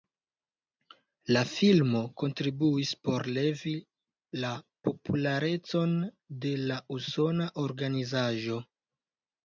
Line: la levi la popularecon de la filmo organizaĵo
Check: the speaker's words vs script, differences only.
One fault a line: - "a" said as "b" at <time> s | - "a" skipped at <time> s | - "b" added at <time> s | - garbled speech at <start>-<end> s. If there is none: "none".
- "filmo kontribuis por" added at 1.5 s
- "filmo" said as "usona" at 7.0 s